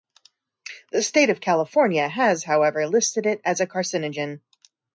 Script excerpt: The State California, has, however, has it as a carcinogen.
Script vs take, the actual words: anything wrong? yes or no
yes